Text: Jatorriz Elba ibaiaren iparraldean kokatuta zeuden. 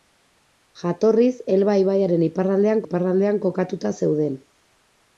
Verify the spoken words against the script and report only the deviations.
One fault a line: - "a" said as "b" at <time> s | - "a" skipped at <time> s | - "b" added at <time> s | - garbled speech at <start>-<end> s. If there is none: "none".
- "iparraldean" added at 2.8 s